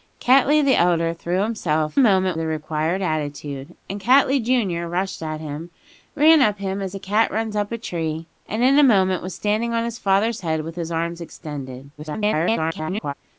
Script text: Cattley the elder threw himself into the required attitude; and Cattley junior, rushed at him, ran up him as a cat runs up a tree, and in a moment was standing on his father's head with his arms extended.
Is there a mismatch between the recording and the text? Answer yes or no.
yes